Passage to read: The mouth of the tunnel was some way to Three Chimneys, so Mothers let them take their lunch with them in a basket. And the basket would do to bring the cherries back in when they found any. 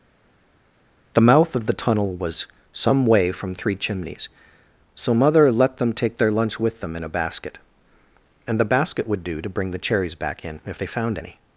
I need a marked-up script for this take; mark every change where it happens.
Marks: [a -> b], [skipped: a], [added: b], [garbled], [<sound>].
The mouth of the tunnel was some way [to -> from] Three Chimneys, so [Mothers -> Mother] let them take their lunch with them in a basket. And the basket would do to bring the cherries back in [when -> if] they found any.